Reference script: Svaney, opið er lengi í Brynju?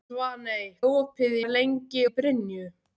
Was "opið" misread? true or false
false